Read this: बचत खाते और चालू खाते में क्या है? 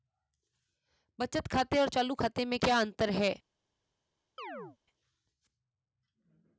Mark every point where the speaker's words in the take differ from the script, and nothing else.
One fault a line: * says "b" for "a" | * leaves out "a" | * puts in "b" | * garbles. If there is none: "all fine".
* puts in "अंतर"